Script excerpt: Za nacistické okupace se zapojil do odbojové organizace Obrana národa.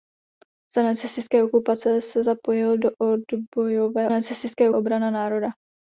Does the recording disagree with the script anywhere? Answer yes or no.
yes